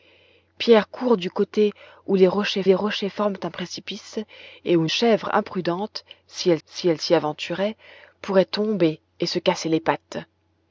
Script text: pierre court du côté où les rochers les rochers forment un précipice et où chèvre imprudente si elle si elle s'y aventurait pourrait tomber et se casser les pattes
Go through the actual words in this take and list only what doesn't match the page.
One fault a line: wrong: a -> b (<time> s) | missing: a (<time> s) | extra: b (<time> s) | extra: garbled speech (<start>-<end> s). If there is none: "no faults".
no faults